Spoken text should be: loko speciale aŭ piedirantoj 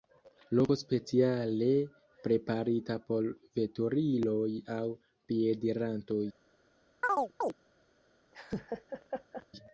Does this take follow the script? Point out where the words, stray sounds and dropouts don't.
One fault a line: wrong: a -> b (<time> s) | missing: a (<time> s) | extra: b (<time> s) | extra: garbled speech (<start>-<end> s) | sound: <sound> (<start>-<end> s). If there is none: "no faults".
extra: preparita por veturiloj (2.3 s)
sound: chirp (7.0-7.5 s)
sound: laugh (8.3-9.5 s)